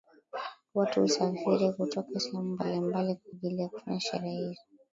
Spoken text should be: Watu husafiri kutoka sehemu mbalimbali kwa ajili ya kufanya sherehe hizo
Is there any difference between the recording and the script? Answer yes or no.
no